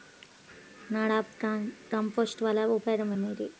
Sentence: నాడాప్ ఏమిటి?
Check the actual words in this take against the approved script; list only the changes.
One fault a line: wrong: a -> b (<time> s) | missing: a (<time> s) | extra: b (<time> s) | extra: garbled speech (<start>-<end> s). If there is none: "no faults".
extra: కంపోస్ట్ వలన ఉపయోగం (1.9 s)